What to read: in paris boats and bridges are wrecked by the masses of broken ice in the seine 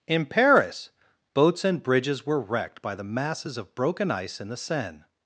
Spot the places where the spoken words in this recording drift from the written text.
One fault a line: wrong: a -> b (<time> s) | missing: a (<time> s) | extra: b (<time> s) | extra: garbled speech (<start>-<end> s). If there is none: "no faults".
wrong: are -> were (2.2 s)